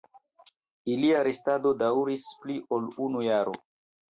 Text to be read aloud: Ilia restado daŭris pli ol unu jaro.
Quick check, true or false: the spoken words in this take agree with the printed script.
true